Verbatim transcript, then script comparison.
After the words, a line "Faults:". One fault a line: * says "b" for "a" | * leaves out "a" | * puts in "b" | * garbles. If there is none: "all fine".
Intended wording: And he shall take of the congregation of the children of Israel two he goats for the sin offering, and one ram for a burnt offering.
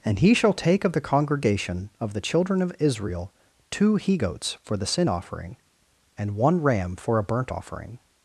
And he shall take of the congregation of the children of Israel two he goats for the sin offering, and one ram for a burnt offering.
Faults:
all fine